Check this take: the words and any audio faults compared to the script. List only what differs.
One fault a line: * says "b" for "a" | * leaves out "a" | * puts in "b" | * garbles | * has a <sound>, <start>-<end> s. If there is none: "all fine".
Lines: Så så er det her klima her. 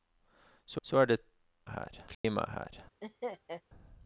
* has a dropout, 2.1-2.2 s
* has a laugh, 3.0-3.6 s